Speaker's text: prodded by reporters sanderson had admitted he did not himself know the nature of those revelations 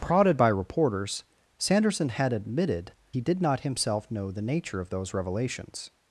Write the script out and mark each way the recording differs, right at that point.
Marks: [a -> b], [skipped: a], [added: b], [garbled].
prodded by reporters sanderson had admitted he did not himself know the nature of those revelations